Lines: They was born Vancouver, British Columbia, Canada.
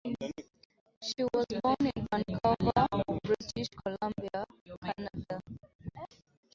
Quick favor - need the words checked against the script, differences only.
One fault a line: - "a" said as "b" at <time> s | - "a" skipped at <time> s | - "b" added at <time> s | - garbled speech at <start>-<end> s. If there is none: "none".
- "They" said as "She" at 1.0 s
- "in" added at 1.9 s